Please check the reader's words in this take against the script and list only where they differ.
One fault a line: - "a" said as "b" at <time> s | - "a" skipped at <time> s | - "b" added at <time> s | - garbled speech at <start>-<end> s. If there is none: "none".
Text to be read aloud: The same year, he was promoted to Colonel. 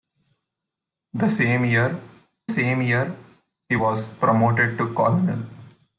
- "same year" added at 2.5 s